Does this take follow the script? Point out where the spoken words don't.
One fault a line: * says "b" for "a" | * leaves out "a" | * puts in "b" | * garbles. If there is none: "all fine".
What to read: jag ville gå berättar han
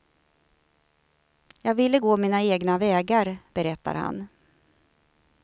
* puts in "mina egna vägar"